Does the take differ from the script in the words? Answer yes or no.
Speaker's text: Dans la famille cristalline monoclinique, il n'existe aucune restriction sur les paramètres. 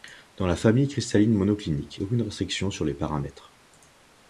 yes